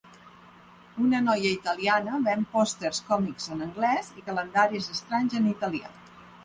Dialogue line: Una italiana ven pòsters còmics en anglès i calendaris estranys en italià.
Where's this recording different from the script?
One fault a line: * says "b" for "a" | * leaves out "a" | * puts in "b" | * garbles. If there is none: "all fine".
* puts in "noia"